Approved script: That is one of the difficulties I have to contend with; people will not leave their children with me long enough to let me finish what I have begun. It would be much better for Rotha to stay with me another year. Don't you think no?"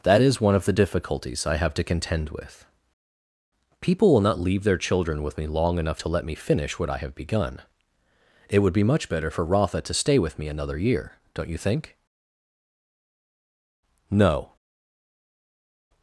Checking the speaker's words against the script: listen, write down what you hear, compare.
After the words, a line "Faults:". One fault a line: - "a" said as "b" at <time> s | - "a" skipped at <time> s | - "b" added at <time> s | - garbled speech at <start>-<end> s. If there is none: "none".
That is one of the difficulties I have to contend with; people will not leave their children with me long enough to let me finish what I have begun. It would be much better for Rotha to stay with me another year. Don't you think no?"
Faults:
none